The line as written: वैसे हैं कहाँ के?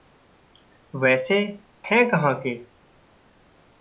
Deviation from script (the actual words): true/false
false